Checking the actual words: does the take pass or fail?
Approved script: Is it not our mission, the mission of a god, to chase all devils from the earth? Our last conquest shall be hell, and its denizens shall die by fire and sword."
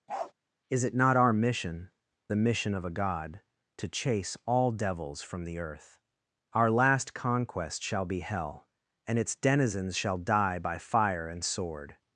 pass